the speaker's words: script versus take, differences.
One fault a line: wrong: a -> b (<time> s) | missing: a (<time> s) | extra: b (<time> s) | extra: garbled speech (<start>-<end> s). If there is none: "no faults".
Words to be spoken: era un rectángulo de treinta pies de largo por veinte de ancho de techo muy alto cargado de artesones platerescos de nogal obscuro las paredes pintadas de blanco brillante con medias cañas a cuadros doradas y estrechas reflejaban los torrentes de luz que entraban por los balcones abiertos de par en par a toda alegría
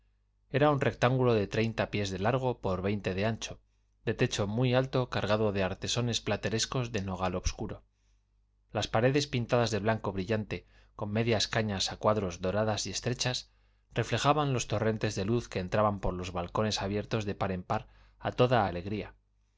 no faults